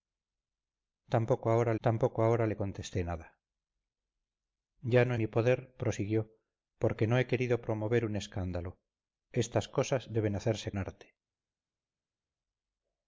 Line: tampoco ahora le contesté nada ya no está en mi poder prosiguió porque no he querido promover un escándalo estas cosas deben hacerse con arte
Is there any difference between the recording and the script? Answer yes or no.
yes